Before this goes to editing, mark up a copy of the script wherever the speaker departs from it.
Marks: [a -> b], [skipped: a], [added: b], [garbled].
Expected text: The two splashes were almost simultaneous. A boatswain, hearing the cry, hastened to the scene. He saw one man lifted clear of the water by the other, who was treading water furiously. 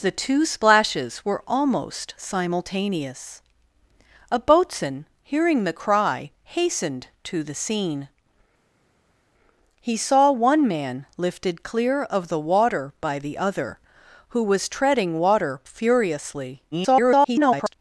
The two splashes were almost simultaneous. A boatswain, hearing the cry, hastened to the scene. He saw one man lifted clear of the water by the other, who was treading water furiously. [garbled]